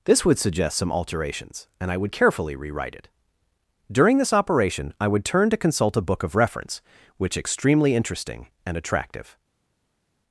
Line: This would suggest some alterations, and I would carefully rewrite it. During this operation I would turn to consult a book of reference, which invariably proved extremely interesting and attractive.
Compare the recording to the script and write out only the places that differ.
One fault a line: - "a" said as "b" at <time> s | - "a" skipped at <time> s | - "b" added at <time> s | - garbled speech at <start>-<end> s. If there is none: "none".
- "invariably proved" skipped at 7.4 s